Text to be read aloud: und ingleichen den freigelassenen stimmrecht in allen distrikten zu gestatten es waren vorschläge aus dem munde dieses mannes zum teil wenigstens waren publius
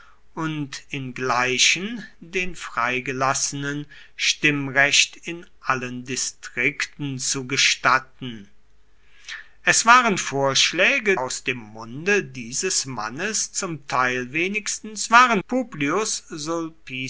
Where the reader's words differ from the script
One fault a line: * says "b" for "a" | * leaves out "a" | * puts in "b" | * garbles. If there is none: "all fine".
all fine